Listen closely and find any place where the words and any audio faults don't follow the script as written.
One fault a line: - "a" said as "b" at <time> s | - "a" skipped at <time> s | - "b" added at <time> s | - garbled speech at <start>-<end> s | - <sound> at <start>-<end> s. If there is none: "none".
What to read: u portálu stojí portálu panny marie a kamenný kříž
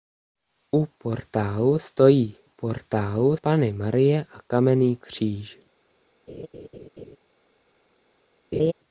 - laugh at 6.3-7.2 s
- laugh at 8.5-8.7 s